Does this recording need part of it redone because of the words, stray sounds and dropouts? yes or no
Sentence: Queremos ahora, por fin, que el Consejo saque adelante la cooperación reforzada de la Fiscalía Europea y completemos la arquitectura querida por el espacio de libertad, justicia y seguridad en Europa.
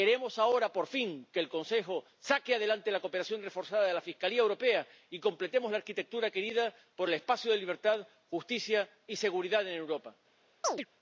yes